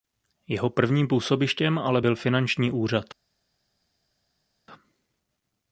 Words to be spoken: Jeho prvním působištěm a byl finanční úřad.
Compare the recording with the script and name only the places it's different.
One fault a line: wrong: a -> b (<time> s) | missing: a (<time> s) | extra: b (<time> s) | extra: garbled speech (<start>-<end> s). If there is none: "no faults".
wrong: a -> ale (1.8 s)